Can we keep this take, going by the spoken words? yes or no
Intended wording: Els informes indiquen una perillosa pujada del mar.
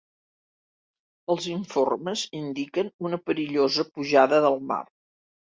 yes